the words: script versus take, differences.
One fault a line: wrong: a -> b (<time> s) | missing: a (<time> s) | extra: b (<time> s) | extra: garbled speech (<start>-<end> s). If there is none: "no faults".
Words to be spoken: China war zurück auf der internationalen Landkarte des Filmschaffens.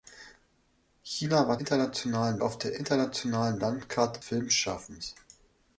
wrong: zurück -> internationalen (1.6 s)
missing: des (4.2 s)